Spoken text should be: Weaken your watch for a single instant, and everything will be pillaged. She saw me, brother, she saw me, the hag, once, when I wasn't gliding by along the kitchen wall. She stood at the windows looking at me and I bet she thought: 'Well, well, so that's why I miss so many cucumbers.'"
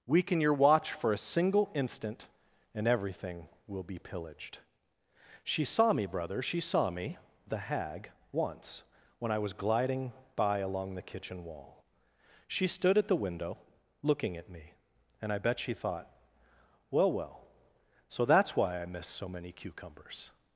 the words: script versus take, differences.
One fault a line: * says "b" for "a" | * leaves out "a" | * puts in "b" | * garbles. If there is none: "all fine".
* says "was" for "wasn't"
* says "window" for "windows"